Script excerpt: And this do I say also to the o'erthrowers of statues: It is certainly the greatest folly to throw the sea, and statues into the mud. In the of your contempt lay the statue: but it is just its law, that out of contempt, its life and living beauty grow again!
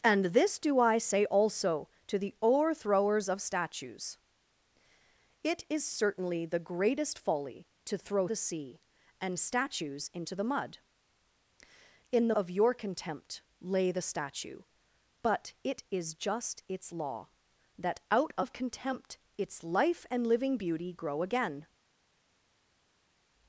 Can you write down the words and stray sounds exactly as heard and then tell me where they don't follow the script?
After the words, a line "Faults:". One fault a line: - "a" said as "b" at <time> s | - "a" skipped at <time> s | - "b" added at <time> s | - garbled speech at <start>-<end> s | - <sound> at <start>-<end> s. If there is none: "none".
And this do I say also to the o'erthrowers of statues: It is certainly the greatest folly to throw the sea, and statues into the mud. In the of your contempt lay the statue: but it is just its law, that out of contempt, its life and living beauty grow again!
Faults:
none